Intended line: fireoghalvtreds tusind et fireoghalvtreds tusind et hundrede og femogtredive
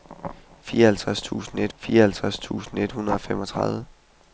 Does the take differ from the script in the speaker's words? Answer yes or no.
no